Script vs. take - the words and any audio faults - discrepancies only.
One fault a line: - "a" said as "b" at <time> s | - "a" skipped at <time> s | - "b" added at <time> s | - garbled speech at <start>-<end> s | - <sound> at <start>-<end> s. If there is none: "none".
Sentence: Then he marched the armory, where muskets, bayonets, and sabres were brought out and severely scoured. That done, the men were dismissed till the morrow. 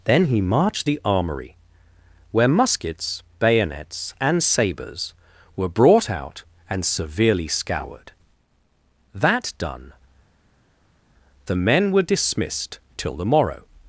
none